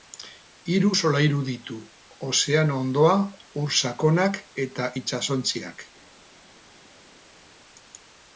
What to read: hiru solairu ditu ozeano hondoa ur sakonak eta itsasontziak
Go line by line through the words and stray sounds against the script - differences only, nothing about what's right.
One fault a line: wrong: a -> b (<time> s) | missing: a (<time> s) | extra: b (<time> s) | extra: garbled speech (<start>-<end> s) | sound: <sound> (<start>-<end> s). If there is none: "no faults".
no faults